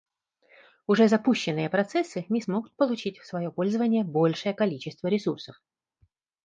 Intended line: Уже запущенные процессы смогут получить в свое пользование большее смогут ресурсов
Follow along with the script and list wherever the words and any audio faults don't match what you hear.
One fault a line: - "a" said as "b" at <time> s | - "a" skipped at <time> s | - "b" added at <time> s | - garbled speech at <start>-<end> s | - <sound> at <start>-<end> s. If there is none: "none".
- "не" added at 2.3 s
- "смогут" said as "количество" at 4.5 s